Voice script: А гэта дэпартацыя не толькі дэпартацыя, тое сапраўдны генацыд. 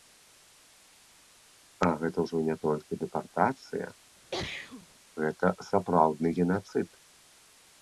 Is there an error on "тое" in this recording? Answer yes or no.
yes